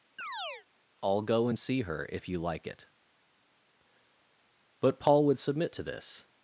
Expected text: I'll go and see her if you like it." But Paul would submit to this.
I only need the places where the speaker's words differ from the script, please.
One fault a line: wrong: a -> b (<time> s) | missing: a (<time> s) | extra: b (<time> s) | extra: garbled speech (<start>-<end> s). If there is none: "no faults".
no faults